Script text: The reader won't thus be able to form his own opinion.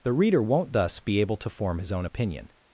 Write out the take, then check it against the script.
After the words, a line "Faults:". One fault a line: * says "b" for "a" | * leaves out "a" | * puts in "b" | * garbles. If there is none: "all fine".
The reader won't thus be able to form his own opinion.
Faults:
all fine